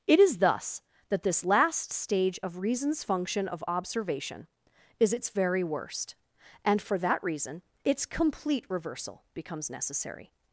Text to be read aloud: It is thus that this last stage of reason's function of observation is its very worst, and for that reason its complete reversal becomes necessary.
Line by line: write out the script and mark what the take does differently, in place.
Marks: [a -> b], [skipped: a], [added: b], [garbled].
It is thus that this last stage of reason's function of observation is its very worst, and for that reason its complete reversal becomes necessary.